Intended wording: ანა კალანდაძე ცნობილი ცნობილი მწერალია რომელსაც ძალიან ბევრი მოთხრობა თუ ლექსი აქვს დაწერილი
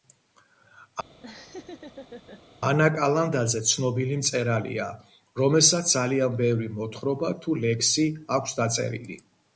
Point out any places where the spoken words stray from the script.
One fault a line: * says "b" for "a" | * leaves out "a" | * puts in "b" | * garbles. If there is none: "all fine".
* leaves out "ცნობილი"